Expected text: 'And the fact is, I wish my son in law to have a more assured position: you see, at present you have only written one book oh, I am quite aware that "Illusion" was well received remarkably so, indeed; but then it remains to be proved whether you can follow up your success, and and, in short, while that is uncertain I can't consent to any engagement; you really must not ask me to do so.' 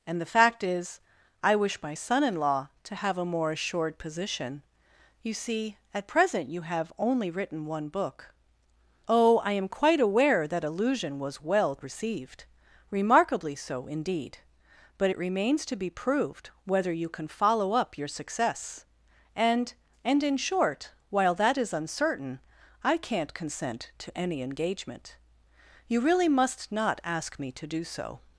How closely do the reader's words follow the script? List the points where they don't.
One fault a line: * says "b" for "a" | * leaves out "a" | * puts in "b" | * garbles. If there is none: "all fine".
* leaves out "then"